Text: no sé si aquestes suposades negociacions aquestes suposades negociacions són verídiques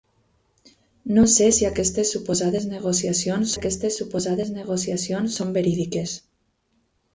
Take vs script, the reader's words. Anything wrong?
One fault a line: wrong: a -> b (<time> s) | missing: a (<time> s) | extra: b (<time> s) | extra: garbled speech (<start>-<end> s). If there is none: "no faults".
no faults